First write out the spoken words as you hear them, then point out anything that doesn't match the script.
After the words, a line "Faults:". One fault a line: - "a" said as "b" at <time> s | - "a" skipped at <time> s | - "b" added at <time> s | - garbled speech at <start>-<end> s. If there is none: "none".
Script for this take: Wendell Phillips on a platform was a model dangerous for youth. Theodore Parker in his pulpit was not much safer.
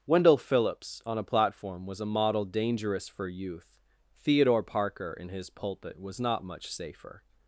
Wendell Phillips on a platform was a model dangerous for youth. Theodore Parker in his pulpit was not much safer.
Faults:
none